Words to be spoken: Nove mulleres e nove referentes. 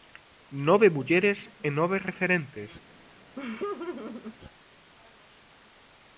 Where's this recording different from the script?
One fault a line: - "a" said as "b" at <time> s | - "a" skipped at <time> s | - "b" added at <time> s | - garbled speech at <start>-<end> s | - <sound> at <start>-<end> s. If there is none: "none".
- laugh at 3.4-4.4 s